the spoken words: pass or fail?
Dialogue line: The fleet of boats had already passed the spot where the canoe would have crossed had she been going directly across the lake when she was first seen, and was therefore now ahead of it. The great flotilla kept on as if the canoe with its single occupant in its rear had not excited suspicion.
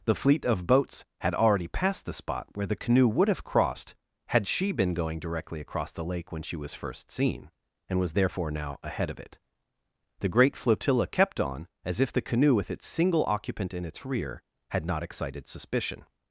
pass